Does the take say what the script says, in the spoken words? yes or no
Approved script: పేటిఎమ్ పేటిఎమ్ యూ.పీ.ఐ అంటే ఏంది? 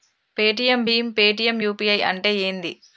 no